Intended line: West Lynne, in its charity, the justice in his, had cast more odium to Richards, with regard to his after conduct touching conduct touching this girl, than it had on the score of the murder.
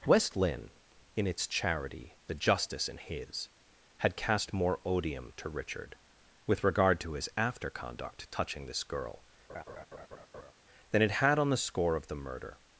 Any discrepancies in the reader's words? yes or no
yes